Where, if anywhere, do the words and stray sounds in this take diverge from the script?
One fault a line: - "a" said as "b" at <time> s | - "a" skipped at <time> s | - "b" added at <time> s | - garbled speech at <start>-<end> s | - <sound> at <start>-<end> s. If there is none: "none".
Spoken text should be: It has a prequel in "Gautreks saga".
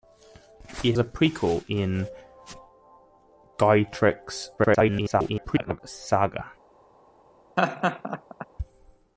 - "has" skipped at 0.9 s
- garbled speech at 4.6-5.8 s
- laugh at 7.6-8.5 s